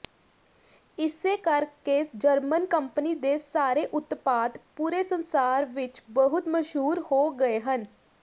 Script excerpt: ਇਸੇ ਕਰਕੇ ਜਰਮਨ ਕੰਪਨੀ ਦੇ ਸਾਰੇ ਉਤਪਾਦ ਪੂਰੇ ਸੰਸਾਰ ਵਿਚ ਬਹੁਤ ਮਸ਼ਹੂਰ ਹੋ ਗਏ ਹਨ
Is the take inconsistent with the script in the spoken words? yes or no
no